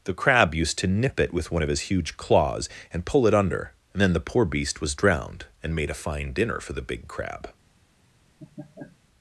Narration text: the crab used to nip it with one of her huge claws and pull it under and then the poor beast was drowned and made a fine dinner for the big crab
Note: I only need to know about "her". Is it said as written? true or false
false